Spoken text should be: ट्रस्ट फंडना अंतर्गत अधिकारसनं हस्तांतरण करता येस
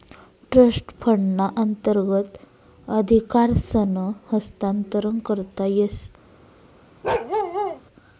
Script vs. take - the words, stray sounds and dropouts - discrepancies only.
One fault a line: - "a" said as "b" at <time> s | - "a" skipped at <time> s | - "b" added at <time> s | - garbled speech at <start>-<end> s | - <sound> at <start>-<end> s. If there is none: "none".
- bark at 7.0-7.8 s